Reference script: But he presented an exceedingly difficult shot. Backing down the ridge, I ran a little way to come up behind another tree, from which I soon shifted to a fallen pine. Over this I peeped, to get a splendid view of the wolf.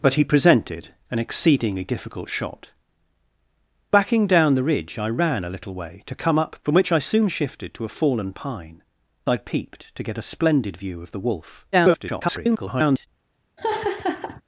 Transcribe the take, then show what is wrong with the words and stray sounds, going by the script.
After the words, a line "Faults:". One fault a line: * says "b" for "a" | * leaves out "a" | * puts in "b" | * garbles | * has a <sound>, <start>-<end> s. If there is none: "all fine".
But he presented an exceedingly difficult shot. Backing down the ridge, I ran a little way to come up from which I soon shifted to a fallen pine. I peeped, to get a splendid view of the wolf. [garbled]
Faults:
* leaves out "behind another tree"
* leaves out "Over this"
* garbles
* has a laugh, 13.6-14.4 s